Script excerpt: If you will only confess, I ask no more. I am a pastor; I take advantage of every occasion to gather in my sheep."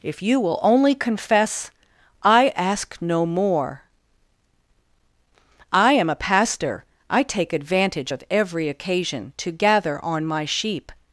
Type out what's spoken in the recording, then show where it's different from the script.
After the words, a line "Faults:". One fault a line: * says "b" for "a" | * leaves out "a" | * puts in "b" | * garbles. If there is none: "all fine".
If you will only confess, I ask no more. I am a pastor; I take advantage of every occasion to gather on my sheep."
Faults:
* says "on" for "in"